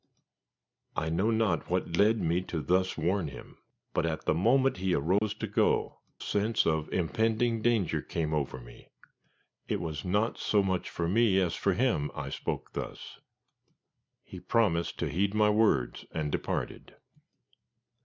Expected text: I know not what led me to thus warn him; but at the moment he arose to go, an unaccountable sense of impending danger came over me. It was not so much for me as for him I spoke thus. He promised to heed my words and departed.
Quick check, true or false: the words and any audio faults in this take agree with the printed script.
false